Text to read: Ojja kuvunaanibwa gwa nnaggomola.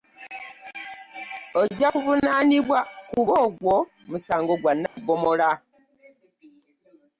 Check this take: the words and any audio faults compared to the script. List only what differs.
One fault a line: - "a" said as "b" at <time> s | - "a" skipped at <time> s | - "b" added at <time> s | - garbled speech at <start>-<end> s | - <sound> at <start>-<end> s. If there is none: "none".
- "kuba ogwo musango" added at 3.1 s
- dropout at 4.9-5.0 s